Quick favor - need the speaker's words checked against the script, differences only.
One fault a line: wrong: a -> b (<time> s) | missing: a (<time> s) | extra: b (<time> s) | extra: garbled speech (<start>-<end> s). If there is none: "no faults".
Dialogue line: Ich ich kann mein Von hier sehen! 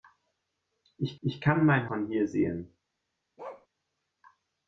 no faults